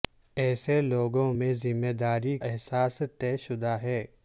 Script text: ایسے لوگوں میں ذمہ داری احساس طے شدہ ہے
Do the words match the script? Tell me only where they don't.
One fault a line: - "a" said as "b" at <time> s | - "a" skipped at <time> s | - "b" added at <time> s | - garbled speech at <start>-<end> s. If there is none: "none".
none